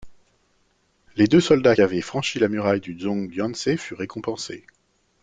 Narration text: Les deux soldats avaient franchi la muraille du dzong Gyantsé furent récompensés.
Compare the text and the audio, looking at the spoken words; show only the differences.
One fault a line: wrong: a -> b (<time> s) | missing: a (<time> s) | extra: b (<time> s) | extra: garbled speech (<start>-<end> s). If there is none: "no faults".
no faults